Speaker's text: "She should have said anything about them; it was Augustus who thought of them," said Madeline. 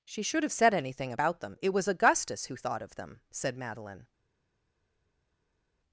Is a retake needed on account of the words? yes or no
no